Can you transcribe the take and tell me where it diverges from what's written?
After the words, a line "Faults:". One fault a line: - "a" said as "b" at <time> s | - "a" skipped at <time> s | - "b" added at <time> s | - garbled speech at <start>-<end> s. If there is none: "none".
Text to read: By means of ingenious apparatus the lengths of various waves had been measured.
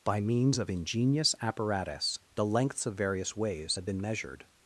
By means of ingenious apparatus the lengths of various waves had been measured.
Faults:
none